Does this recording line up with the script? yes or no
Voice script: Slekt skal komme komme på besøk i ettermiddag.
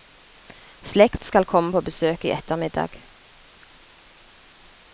no